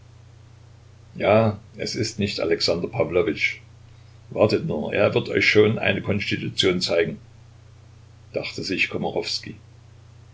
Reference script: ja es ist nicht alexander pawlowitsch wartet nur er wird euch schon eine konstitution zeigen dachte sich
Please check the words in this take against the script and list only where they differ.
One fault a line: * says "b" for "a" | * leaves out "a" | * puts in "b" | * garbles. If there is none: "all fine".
all fine